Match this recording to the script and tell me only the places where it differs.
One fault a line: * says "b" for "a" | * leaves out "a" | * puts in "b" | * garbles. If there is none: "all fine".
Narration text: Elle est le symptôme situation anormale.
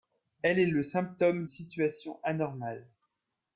all fine